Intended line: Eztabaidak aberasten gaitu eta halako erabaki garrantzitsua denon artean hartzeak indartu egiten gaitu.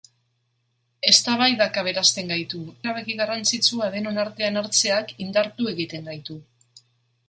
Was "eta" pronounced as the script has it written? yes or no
no